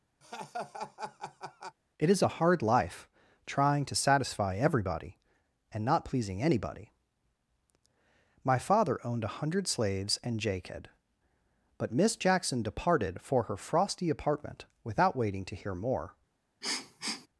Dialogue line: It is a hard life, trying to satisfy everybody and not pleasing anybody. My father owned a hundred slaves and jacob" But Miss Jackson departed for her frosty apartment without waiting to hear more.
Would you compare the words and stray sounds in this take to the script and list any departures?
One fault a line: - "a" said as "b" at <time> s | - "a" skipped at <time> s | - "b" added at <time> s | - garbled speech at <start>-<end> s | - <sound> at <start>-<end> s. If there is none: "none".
- laugh at 0.2-1.8 s
- sniff at 16.6-17.3 s